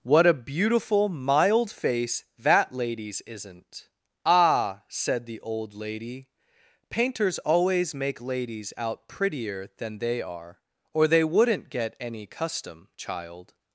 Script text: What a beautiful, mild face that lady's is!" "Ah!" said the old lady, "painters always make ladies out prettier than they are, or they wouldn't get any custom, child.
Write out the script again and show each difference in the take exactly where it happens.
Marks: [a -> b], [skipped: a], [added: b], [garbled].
What a beautiful, mild face that lady's [is!" -> isn't] "Ah!" said the old lady, "painters always make ladies out prettier than they are, or they wouldn't get any custom, child.